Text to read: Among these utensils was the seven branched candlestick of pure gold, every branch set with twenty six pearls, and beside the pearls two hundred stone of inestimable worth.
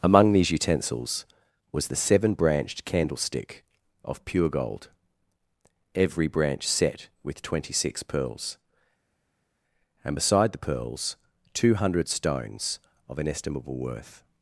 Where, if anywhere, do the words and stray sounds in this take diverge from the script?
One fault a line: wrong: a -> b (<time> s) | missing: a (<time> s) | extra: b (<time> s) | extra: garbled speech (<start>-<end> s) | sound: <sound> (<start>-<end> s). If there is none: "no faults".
wrong: stone -> stones (12.1 s)